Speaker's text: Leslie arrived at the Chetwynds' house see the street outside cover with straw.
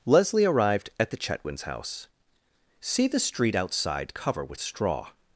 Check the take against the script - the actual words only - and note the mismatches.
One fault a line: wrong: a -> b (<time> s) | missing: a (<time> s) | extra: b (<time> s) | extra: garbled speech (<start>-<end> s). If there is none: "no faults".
no faults